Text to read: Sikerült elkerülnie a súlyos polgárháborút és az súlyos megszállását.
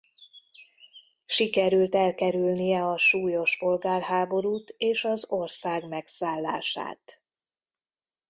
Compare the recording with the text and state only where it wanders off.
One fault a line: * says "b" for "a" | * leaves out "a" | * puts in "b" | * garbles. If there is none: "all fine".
* says "ország" for "súlyos"